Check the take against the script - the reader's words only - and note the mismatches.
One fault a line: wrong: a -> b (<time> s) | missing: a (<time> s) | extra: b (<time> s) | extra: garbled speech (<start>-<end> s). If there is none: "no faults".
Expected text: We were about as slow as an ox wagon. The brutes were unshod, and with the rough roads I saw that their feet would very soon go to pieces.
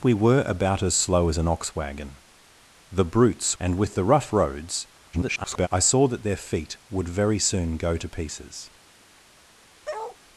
missing: were unshod (3.5 s)
extra: garbled speech (5.1-5.7 s)